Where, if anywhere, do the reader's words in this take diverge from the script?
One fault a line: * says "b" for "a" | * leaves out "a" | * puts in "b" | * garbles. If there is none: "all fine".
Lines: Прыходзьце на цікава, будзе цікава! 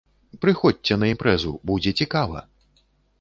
* says "імпрэзу" for "цікава"